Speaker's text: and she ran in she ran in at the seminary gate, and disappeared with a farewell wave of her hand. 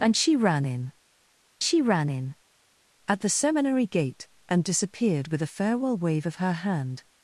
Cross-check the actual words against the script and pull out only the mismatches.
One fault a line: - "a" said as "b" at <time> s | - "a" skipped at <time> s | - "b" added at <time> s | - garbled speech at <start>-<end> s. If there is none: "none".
none